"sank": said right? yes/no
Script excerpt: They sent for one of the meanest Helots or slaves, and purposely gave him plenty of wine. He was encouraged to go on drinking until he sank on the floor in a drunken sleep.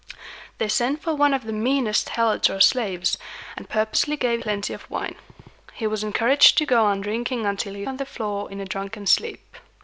no